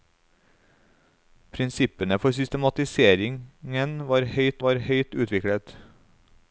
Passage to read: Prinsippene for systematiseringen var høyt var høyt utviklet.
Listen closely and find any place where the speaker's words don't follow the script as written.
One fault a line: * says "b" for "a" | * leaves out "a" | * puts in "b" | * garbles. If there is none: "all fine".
all fine